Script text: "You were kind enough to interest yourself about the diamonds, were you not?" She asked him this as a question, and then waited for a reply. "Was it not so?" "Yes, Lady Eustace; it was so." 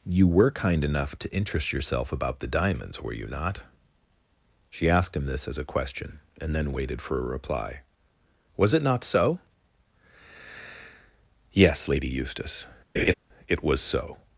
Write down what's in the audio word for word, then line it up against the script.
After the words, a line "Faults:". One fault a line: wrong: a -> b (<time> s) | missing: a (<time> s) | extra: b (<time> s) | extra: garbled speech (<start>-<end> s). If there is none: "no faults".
"You were kind enough to interest yourself about the diamonds, were you not?" She asked him this as a question, and then waited for a reply. "Was it not so?" "Yes, Lady Eustace; it was so."
Faults:
no faults